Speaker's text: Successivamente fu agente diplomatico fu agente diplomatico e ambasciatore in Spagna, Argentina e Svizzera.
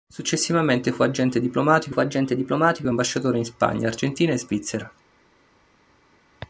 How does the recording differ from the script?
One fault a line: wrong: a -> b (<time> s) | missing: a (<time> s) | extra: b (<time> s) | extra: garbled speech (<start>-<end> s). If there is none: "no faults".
no faults